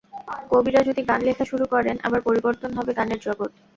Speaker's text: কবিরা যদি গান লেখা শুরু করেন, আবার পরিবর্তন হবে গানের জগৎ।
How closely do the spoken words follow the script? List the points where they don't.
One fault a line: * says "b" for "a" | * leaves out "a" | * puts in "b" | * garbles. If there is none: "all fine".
all fine